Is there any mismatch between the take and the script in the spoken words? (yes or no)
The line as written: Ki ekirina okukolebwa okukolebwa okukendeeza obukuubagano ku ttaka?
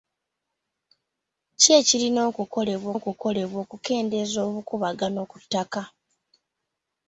no